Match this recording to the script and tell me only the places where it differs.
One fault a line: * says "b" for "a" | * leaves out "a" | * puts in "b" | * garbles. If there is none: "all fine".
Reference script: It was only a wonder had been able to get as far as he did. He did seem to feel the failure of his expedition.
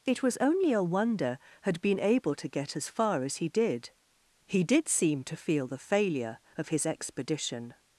all fine